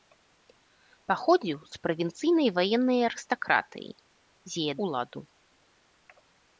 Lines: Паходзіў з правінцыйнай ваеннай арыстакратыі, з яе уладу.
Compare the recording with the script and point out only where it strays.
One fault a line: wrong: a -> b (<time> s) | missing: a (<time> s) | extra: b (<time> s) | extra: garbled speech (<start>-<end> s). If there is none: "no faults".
no faults